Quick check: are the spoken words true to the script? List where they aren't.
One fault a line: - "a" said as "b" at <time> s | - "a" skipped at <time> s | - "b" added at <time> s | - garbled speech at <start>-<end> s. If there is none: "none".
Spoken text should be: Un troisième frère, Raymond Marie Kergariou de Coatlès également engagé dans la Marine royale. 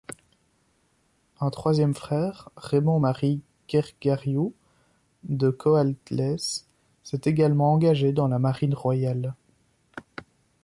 - "s'est" added at 7.0 s